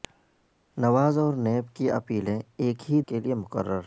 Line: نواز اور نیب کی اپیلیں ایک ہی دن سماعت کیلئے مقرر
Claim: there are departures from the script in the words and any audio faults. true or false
true